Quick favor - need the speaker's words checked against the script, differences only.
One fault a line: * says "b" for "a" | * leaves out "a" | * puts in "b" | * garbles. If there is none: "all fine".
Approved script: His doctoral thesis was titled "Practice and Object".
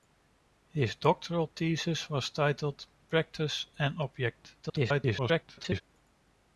* garbles